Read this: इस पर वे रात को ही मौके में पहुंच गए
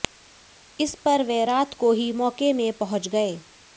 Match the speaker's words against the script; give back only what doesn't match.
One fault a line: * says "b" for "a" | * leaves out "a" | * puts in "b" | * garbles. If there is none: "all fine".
all fine